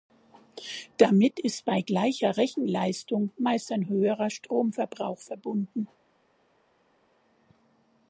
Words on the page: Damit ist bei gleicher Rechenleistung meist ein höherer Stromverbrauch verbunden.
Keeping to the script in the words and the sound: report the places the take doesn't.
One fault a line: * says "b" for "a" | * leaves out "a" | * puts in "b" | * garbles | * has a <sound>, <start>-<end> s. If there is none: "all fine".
all fine